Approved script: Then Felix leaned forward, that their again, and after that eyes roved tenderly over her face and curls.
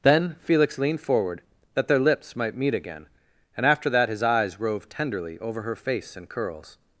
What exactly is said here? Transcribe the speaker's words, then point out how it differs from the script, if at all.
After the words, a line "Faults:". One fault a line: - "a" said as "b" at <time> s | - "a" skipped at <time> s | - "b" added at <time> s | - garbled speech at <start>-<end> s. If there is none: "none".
Then Felix leaned forward, that their lips might meet again, and after that his eyes roved tenderly over her face and curls.
Faults:
- "lips might meet" added at 2.0 s
- "his" added at 4.1 s